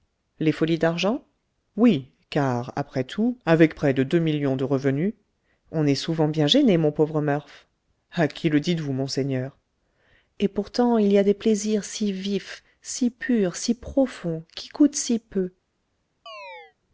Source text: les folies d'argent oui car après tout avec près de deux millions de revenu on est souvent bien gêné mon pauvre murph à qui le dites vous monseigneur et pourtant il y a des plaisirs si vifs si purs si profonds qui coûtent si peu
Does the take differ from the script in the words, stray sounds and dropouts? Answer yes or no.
yes